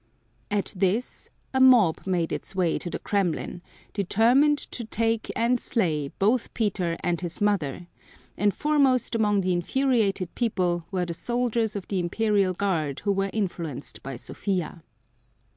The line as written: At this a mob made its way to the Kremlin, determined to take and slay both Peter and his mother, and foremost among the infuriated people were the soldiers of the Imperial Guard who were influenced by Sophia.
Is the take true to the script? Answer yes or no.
yes